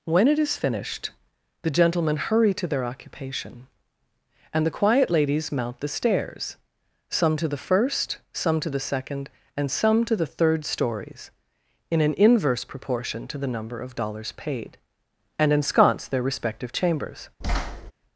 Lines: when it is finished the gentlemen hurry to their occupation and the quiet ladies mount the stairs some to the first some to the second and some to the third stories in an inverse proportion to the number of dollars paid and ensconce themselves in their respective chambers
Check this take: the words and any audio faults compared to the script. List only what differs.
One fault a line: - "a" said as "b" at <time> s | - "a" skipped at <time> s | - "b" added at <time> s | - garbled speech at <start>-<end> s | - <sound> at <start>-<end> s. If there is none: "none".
- "themselves in" skipped at 16.1 s
- thud at 17.4-17.9 s